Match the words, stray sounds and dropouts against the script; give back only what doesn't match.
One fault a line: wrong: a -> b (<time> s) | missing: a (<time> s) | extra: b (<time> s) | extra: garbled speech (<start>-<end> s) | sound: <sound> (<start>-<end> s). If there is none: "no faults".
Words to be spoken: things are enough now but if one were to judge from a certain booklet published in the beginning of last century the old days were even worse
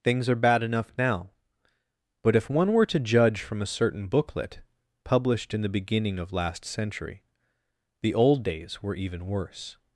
extra: bad (0.3 s)